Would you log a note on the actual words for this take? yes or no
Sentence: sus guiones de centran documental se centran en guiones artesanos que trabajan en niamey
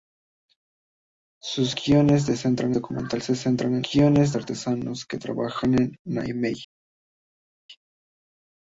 no